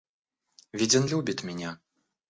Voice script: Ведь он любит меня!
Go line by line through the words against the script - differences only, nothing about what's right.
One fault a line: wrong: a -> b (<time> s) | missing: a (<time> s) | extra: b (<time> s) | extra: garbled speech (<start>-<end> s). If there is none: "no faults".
no faults